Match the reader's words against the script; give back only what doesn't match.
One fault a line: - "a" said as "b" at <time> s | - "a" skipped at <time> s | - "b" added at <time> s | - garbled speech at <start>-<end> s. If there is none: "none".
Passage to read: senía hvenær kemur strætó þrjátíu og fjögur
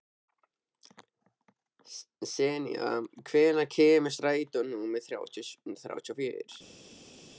- "númer" added at 4.7 s